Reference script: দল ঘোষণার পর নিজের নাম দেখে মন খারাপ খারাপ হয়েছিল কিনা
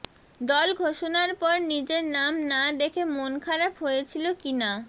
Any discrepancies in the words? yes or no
yes